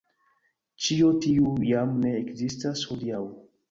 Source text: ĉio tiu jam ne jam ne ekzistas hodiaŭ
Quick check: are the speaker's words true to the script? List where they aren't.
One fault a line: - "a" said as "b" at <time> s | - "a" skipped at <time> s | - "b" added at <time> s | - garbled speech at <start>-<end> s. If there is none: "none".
- "jam ne" skipped at 2.1 s